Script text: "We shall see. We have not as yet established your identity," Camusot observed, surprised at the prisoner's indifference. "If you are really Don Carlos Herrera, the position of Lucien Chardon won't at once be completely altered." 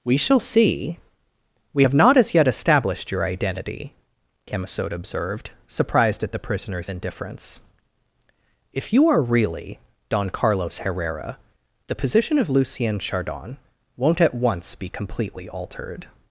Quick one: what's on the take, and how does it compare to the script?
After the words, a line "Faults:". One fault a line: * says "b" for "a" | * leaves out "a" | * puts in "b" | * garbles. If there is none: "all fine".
"We shall see. We have not as yet established your identity," Camusot observed, surprised at the prisoner's indifference. "If you are really Don Carlos Herrera, the position of Lucien Chardon won't at once be completely altered."
Faults:
all fine